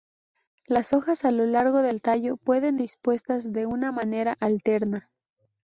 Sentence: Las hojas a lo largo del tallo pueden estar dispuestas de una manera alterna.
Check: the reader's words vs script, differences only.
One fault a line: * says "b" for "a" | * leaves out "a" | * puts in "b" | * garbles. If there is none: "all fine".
* leaves out "estar"